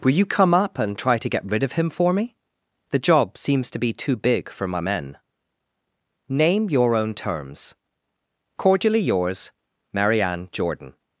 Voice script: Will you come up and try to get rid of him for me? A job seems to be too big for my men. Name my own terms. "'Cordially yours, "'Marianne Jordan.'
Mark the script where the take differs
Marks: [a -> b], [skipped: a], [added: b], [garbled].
Will you come up and try to get rid of him for me? [A -> The] job seems to be too big for my men. Name [my -> your] own terms. "'Cordially yours, "'Marianne Jordan.'